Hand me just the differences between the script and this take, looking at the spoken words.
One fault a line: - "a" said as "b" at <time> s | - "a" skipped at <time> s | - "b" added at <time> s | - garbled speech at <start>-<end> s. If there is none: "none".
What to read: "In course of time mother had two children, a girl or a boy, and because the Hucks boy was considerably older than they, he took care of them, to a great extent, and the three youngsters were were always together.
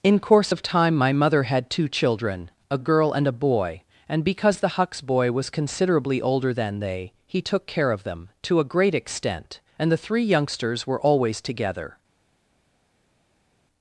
- "my" added at 0.9 s
- "or" said as "and" at 3.1 s
- "were" skipped at 11.0 s